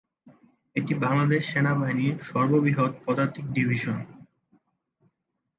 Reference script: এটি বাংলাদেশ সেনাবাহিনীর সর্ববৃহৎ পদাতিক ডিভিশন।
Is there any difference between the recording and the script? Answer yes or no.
no